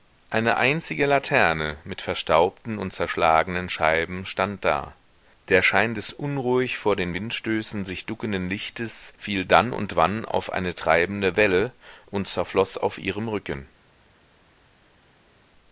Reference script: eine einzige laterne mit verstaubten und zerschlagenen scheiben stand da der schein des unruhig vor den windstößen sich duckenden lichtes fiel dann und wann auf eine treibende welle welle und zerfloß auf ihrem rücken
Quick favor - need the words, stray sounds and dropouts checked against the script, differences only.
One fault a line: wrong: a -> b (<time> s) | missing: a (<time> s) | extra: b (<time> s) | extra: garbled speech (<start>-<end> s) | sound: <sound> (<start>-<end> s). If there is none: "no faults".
missing: welle (11.7 s)